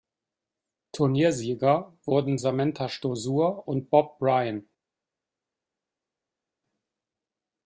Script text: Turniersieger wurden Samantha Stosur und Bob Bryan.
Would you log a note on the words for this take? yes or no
no